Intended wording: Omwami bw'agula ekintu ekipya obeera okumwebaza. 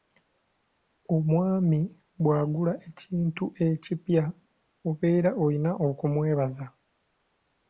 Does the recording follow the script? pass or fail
fail